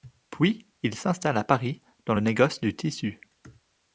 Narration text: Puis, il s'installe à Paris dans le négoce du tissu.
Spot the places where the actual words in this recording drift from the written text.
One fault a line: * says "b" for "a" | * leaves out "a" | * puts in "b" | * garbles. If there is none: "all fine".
all fine